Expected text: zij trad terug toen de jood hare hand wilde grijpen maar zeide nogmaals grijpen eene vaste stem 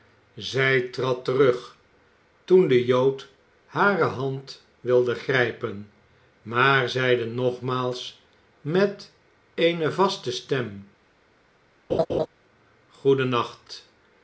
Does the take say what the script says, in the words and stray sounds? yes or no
no